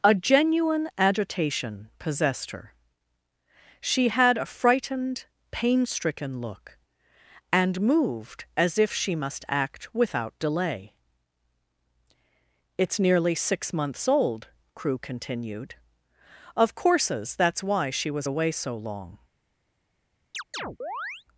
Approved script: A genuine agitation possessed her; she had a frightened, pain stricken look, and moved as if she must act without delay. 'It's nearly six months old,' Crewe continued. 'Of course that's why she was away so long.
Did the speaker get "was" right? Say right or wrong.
right